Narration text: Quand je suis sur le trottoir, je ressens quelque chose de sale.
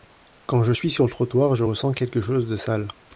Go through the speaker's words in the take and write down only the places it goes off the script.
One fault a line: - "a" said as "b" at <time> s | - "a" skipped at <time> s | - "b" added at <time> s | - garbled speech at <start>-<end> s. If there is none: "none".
none